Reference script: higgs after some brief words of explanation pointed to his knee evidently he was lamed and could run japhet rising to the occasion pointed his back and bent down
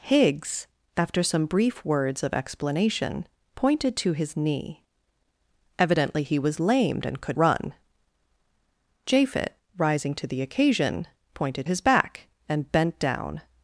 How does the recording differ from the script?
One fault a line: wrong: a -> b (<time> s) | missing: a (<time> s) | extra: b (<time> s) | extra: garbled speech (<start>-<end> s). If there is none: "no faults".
no faults